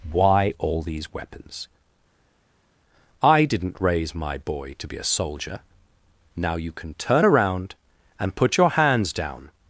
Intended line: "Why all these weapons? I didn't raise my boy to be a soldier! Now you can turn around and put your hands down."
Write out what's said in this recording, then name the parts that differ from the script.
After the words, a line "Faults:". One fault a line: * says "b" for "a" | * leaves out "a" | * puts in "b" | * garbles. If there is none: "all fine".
"Why all these weapons? I didn't raise my boy to be a soldier! Now you can turn around and put your hands down."
Faults:
all fine